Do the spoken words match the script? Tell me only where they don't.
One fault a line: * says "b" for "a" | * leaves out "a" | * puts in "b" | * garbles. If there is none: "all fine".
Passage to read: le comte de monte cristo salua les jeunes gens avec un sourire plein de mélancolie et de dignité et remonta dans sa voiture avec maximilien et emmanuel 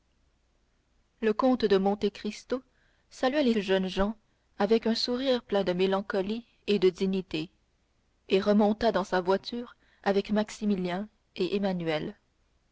all fine